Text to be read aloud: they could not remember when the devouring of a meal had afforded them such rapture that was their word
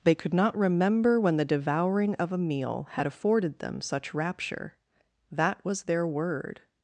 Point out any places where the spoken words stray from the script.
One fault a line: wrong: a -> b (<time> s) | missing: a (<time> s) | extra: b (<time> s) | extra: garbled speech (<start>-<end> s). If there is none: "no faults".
no faults